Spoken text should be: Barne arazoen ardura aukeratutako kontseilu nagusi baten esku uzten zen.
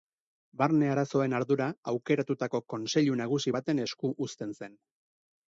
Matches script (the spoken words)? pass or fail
pass